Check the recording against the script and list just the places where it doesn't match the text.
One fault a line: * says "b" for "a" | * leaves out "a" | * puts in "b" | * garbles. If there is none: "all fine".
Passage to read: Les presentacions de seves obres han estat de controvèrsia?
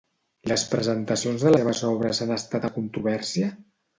all fine